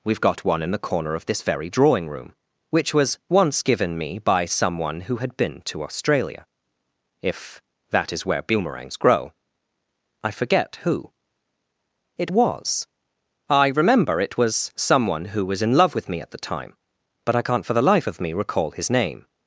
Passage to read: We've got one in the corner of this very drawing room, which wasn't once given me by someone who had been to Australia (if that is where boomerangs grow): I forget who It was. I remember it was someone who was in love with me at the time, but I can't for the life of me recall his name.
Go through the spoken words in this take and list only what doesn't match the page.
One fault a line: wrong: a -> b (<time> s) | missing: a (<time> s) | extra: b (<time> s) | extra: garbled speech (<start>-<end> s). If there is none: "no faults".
wrong: wasn't -> was (2.9 s)